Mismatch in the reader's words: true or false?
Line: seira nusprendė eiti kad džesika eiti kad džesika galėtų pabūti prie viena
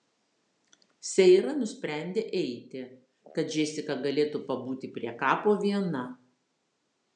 true